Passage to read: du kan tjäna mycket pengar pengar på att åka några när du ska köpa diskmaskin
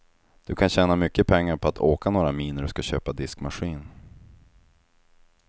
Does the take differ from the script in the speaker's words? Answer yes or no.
yes